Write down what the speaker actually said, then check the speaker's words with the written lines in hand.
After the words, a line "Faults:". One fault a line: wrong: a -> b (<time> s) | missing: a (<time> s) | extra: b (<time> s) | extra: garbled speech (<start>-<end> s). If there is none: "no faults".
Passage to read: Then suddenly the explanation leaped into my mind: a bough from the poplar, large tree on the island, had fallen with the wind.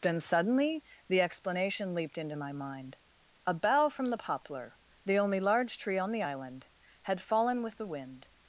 Then suddenly the explanation leaped into my mind: a bough from the poplar, the only large tree on the island, had fallen with the wind.
Faults:
extra: the only (5.0 s)